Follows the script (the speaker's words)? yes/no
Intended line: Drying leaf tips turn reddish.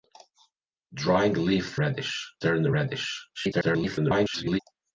no